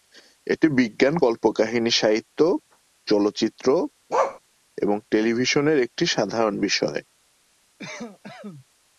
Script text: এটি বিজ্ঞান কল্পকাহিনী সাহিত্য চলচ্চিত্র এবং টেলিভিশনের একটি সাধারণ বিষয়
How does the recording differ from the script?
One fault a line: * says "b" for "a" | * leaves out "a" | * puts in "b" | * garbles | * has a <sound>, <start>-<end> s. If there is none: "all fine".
* has a bark, 4.1-4.4 s
* has a cough, 7.8-8.7 s